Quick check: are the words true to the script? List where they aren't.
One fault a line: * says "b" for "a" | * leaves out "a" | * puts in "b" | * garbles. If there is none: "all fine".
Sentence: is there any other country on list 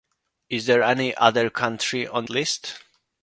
all fine